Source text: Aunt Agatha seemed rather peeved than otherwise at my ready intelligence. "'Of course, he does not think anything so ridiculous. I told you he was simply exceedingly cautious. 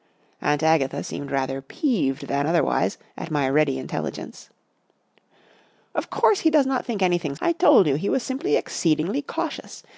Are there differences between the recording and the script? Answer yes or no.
yes